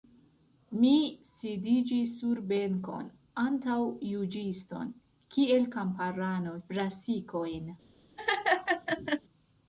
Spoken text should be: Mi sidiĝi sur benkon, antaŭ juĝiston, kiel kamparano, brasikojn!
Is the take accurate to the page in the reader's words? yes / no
yes